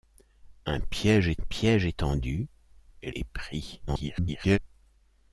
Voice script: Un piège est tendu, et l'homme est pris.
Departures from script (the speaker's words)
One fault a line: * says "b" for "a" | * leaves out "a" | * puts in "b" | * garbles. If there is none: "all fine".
* puts in "piège est"
* leaves out "l'homme"
* garbles